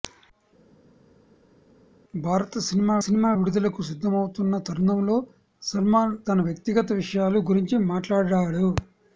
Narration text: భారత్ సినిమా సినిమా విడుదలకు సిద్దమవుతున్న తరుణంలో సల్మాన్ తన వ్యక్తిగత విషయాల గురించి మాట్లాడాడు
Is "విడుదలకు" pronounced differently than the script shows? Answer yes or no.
no